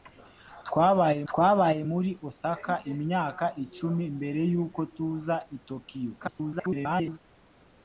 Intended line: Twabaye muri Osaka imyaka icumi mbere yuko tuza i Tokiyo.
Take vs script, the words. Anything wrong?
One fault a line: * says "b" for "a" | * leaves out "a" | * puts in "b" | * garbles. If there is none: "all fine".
* puts in "twabaye"
* garbles